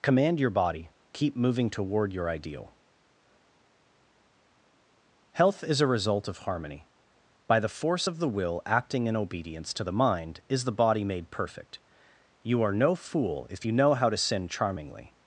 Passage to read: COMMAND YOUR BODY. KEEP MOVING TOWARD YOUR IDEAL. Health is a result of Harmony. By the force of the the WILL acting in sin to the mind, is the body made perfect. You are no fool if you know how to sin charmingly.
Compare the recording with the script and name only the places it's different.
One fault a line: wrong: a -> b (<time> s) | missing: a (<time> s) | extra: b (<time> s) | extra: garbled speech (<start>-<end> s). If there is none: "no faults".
missing: the (8.3 s)
wrong: sin -> obedience (9.2 s)